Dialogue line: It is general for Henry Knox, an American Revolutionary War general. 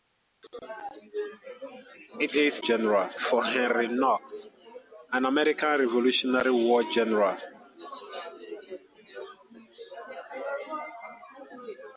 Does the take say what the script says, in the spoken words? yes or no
yes